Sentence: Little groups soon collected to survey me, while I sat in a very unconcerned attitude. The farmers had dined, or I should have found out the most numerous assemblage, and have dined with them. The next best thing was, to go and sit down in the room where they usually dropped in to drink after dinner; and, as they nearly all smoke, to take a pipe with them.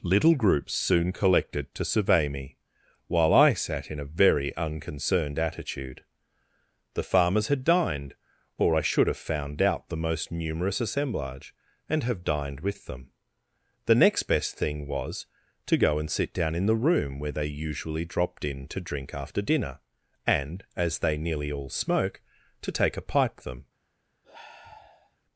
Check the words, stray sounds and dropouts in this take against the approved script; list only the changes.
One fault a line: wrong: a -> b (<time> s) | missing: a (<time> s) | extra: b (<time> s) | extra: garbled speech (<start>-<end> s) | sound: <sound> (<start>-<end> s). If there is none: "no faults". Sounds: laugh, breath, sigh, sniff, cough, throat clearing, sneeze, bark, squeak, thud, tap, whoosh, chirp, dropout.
missing: with (23.4 s)
sound: sigh (24.2-25.2 s)